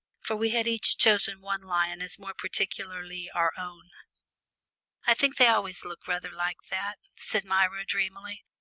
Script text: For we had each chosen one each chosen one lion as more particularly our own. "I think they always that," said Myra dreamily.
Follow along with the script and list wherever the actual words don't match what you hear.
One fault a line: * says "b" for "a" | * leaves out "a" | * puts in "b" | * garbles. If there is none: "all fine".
* leaves out "each chosen one"
* puts in "look rather like"